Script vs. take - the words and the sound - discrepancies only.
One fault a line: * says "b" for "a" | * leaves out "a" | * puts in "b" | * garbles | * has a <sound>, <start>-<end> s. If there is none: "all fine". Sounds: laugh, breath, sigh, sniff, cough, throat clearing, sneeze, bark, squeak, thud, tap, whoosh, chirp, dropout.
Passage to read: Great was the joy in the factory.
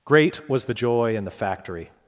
all fine